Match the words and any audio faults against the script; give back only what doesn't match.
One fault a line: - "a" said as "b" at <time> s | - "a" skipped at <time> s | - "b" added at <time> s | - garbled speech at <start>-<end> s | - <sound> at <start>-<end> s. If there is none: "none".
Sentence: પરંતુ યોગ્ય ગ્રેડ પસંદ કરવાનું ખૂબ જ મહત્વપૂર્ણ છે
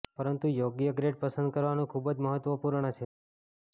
none